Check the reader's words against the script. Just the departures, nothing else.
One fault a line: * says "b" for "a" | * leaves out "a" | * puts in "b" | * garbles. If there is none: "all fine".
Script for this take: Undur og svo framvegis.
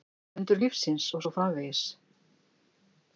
* puts in "lífsins"